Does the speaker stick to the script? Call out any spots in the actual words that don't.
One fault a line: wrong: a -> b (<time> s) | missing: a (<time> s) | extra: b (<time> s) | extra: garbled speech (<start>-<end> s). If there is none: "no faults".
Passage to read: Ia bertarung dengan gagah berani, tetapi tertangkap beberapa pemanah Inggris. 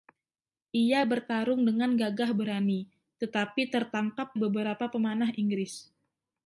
no faults